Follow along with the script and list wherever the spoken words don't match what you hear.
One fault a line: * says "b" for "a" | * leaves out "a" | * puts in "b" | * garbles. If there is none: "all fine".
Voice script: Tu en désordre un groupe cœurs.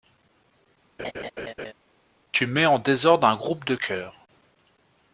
* puts in "mets"
* puts in "de"